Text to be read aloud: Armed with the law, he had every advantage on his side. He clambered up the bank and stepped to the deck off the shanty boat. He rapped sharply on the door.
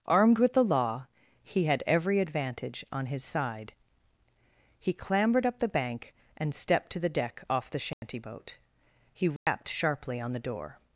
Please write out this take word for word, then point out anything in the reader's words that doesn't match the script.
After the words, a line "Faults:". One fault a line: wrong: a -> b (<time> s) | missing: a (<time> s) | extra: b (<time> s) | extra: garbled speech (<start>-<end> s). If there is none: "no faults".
Armed with the law, he had every advantage on his side. He clambered up the bank and stepped to the deck off the shanty boat. He rapped sharply on the door.
Faults:
no faults